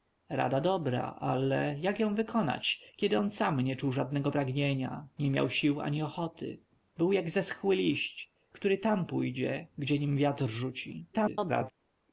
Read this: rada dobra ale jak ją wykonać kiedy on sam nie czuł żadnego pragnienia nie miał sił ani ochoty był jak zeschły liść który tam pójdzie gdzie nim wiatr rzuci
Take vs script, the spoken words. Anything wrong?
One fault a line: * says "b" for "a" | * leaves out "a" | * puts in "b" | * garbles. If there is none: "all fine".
* garbles